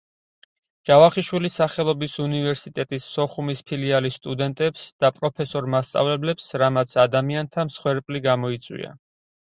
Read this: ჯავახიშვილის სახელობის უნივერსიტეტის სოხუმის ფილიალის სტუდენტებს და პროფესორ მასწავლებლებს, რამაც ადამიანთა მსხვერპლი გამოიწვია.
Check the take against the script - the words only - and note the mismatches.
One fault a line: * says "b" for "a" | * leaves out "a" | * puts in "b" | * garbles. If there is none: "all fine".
all fine